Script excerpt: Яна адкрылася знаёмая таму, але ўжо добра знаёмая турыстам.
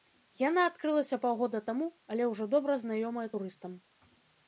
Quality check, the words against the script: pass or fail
fail